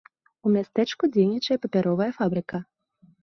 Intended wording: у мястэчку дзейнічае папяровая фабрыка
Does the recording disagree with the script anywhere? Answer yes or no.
no